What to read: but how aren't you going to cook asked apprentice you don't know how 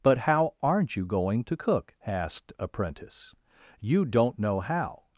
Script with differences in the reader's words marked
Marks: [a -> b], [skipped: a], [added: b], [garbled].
but how aren't you going to cook asked apprentice you don't know how